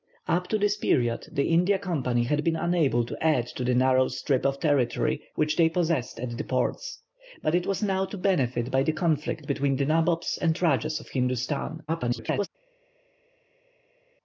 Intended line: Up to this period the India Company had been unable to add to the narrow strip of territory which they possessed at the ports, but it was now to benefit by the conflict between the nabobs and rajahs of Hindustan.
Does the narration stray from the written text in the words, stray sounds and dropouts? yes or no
yes